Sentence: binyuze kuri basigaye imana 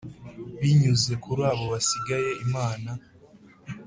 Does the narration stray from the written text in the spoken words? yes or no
yes